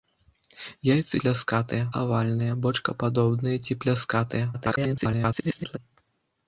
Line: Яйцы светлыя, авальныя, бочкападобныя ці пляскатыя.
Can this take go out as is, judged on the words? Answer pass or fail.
fail